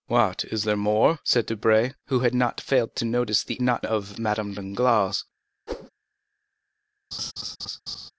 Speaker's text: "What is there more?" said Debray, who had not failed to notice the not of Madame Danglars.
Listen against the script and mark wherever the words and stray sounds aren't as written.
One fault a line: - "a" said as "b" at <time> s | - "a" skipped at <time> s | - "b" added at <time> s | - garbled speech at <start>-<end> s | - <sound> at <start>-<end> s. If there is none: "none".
- whoosh at 5.7-5.9 s
- laugh at 7.1-8.1 s